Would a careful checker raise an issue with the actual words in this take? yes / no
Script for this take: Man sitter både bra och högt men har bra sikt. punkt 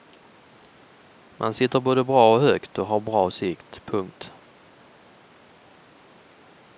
yes